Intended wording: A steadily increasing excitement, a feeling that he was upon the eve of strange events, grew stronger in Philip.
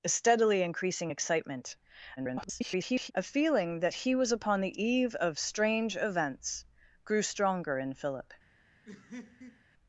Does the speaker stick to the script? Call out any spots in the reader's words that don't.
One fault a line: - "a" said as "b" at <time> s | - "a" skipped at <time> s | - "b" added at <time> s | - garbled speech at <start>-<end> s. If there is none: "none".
- garbled speech at 2.2-3.1 s